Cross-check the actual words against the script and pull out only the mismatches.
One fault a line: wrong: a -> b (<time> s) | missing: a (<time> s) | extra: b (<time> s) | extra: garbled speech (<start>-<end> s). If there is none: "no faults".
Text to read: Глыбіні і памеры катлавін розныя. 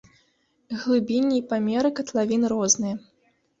no faults